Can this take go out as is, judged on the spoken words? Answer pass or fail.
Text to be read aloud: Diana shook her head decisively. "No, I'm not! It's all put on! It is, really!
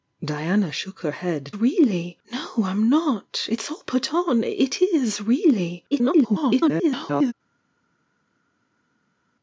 fail